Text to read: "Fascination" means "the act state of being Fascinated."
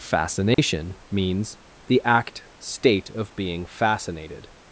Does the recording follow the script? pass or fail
pass